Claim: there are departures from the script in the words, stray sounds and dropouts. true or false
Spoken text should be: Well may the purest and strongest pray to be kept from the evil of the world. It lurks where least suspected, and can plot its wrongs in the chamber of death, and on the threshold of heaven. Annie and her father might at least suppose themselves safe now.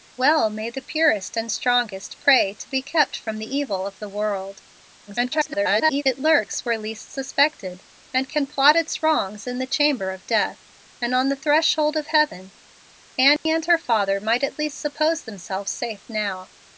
true